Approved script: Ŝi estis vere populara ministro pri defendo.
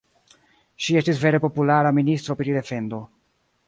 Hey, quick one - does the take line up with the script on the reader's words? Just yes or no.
yes